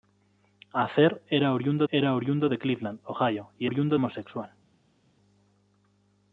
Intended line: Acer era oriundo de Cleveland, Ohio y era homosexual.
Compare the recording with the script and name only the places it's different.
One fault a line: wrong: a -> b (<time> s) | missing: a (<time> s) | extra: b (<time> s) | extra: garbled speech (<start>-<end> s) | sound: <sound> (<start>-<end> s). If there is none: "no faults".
extra: era oriundo (1.9 s)
wrong: era -> oriundo (3.6 s)